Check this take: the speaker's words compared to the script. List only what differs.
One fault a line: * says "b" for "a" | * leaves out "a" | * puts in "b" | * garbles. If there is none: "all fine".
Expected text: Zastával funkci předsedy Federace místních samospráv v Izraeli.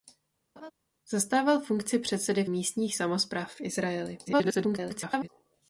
* leaves out "Federace"
* garbles